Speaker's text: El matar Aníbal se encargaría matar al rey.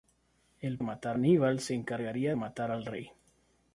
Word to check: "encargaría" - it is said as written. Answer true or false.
true